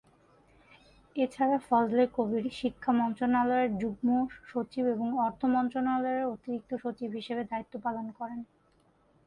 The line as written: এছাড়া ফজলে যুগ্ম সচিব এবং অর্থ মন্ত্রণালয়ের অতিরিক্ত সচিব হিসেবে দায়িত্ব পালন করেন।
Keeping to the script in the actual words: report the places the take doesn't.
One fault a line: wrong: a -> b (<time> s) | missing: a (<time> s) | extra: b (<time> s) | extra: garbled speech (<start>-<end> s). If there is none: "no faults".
extra: কবির শিক্ষা মন্ত্রণালয়ের (2.1 s)